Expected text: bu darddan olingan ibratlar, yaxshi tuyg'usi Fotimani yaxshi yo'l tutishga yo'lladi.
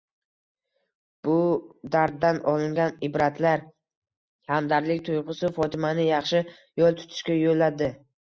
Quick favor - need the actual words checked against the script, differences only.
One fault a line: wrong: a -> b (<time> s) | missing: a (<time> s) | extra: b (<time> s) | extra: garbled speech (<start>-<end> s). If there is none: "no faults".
wrong: yaxshi -> hamdardlik (4.5 s)